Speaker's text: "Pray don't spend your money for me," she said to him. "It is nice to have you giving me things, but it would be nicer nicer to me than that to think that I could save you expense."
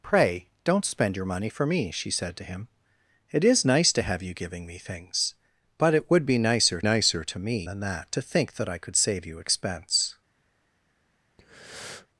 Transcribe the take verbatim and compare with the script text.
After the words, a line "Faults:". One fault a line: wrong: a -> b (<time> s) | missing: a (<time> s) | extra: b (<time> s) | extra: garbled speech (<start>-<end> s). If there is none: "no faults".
"Pray don't spend your money for me," she said to him. "It is nice to have you giving me things, but it would be nicer nicer to me than that to think that I could save you expense."
Faults:
no faults